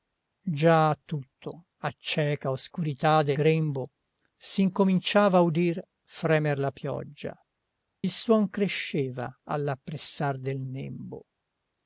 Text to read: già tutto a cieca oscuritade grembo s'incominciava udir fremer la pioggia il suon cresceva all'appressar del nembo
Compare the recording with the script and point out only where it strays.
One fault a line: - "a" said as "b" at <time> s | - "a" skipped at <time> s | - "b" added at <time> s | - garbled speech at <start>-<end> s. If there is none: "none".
none